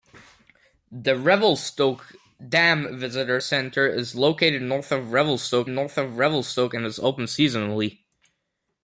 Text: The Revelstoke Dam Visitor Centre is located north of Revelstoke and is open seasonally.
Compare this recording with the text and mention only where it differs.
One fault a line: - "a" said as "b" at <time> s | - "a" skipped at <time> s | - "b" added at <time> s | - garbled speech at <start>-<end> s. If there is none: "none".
- "north of Revelstoke" added at 5.7 s